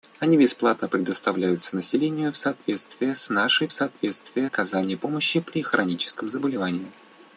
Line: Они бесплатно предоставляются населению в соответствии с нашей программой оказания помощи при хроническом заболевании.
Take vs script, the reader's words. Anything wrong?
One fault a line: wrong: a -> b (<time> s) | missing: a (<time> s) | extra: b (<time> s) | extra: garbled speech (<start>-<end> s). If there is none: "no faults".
wrong: программой -> соответствии (3.7 s)